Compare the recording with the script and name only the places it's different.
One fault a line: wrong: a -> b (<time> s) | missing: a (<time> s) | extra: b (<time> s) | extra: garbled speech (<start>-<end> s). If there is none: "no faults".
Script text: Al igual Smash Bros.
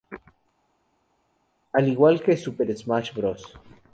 extra: que Super (2.2 s)